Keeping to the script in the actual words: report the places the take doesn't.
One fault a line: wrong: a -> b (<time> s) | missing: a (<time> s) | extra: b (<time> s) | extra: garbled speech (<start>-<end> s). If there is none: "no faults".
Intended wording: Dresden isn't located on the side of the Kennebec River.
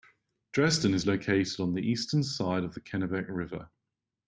wrong: isn't -> is (0.9 s)
extra: eastern (1.8 s)